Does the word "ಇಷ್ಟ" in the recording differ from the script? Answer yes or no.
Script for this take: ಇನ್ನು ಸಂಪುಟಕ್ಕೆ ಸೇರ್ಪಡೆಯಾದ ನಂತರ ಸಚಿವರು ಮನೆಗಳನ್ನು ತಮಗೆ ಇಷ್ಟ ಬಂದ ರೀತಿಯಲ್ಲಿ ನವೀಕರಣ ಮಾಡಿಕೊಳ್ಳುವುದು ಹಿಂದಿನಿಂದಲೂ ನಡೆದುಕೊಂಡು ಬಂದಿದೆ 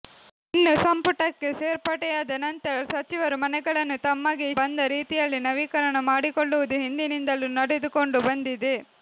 yes